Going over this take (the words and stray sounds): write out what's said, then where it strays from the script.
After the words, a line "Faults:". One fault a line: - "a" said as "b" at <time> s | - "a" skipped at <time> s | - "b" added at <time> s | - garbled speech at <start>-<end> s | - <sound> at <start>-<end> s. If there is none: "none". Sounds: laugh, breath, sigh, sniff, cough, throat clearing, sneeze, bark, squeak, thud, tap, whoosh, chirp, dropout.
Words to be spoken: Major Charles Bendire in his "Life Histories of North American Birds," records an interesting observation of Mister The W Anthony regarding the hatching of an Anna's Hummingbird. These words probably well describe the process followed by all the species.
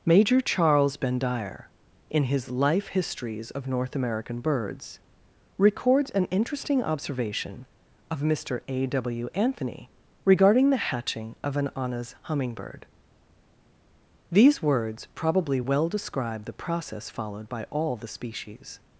Major Charles Bendire in his "Life Histories of North American Birds," records an interesting observation of Mister A W Anthony regarding the hatching of an Anna's Hummingbird. These words probably well describe the process followed by all the species.
Faults:
- "The" said as "A" at 8.7 s